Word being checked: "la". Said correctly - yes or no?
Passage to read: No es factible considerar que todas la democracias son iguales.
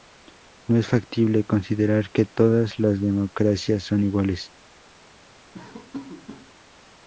no